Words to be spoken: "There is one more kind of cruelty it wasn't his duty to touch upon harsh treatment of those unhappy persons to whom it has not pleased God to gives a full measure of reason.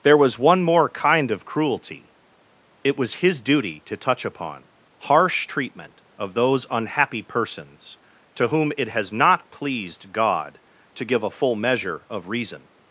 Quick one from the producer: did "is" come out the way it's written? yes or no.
no